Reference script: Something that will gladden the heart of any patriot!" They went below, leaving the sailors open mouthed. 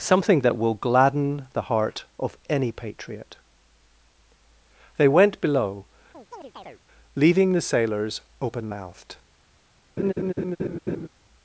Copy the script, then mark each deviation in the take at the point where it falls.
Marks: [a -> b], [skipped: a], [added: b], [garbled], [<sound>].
Something that will gladden the heart of any patriot!" They went below, [chirp] leaving the sailors open mouthed. [laugh]